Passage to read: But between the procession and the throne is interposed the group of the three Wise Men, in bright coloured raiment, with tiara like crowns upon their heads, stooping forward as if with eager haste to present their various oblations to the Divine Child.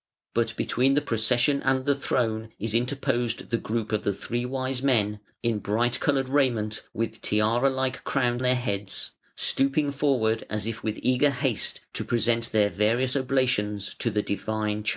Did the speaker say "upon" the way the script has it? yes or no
no